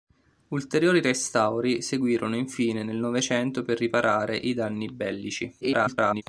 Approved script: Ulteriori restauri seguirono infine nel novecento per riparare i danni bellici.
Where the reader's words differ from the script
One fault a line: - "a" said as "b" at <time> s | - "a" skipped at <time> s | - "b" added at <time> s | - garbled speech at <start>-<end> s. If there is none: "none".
- garbled speech at 5.6-6.2 s